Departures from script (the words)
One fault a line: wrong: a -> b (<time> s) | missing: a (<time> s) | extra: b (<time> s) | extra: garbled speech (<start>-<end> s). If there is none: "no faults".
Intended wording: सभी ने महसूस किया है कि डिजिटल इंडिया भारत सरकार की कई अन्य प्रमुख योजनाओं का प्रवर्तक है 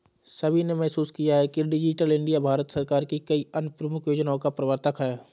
no faults